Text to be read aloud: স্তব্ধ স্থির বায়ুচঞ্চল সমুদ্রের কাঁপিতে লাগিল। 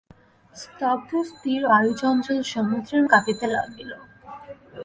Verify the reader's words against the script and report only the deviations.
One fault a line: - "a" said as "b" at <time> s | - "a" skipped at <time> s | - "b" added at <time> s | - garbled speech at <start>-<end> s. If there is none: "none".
none